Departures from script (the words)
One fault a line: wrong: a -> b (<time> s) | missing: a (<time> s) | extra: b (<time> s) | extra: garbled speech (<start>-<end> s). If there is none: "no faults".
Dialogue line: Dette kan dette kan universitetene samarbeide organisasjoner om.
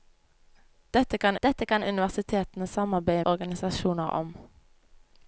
no faults